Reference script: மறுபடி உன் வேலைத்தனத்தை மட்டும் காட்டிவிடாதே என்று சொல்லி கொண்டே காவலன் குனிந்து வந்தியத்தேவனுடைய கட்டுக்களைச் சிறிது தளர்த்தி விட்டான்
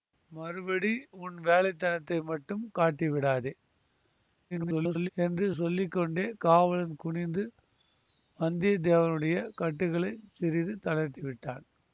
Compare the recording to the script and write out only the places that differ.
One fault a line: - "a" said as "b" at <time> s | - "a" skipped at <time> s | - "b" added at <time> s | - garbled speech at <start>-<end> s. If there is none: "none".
- garbled speech at 4.5-5.1 s